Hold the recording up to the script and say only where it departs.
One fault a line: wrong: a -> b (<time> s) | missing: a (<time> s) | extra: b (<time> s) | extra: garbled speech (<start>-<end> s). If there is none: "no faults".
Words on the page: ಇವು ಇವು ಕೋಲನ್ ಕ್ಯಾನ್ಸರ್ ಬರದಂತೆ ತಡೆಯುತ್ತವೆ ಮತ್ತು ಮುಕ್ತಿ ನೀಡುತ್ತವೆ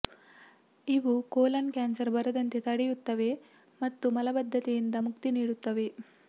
missing: ಇವು (1.1 s)
extra: ಮಲಬದ್ಧತೆಯಿಂದ (4.1 s)